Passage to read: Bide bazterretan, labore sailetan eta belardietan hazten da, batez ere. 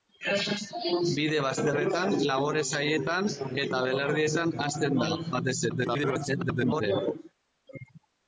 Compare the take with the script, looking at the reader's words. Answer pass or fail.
fail